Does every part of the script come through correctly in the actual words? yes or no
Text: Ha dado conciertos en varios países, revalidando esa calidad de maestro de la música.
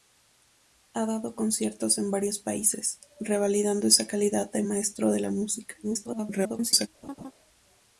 no